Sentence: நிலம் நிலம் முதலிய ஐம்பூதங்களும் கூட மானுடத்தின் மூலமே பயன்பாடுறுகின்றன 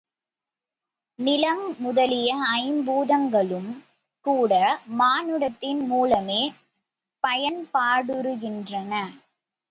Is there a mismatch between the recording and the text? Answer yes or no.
yes